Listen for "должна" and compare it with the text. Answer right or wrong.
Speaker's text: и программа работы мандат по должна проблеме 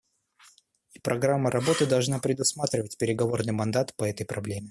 wrong